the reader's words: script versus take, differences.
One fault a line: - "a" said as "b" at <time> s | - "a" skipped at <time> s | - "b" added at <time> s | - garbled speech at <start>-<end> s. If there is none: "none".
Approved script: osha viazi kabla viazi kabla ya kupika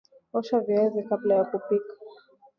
- "viazi kabla" skipped at 1.4 s